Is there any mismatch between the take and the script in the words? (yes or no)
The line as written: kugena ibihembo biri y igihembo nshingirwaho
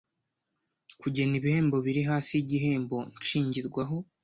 yes